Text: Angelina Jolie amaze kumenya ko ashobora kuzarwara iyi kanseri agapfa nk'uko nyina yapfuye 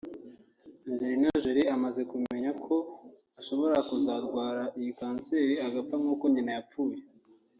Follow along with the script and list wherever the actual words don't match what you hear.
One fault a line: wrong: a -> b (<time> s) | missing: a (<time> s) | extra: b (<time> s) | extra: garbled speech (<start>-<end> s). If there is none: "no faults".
no faults